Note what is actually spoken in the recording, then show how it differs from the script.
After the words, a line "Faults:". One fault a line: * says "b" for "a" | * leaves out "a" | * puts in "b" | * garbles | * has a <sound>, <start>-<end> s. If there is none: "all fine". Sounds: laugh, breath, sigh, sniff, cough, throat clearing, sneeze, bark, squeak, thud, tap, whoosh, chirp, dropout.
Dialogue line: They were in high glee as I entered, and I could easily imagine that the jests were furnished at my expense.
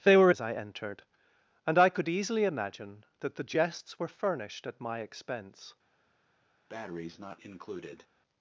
They were as I entered, and I could easily imagine that the jests were furnished at my expense.
Faults:
* leaves out "in high glee"
* has a breath, 6.7-8.1 s